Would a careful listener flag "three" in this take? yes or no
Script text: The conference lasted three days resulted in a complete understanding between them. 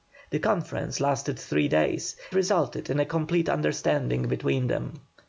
no